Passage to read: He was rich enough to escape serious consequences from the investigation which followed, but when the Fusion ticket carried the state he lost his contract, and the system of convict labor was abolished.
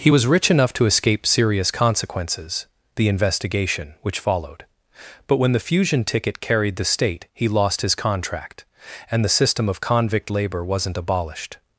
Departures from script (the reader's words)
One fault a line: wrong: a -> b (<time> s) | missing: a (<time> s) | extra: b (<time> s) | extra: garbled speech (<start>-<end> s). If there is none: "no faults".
missing: from (2.7 s)
wrong: was -> wasn't (10.6 s)